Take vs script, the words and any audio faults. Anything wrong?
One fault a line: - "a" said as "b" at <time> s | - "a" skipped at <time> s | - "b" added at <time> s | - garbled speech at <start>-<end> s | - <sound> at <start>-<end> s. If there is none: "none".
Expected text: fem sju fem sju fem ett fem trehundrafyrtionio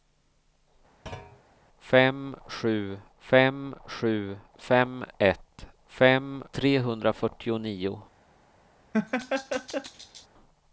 - thud at 1.1-1.4 s
- laugh at 8.9-10.3 s